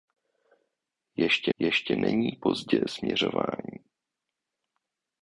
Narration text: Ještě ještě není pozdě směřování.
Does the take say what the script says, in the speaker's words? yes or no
yes